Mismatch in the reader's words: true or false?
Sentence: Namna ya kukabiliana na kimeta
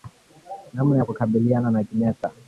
false